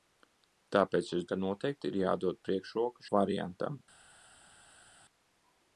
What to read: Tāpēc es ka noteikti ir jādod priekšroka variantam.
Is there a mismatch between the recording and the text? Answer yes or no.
no